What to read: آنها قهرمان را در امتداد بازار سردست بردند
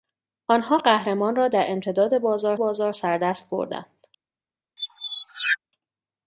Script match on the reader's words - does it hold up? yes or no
no